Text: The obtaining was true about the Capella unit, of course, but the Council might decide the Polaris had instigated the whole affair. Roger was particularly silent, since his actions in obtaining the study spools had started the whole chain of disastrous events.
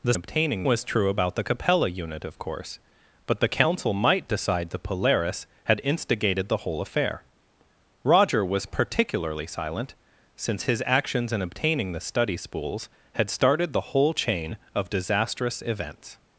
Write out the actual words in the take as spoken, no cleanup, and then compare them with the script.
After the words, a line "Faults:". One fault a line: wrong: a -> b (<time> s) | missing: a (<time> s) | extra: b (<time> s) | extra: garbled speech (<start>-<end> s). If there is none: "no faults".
The obtaining was true about the Capella unit, of course, but the Council might decide the Polaris had instigated the whole affair. Roger was particularly silent, since his actions in obtaining the study spools had started the whole chain of disastrous events.
Faults:
no faults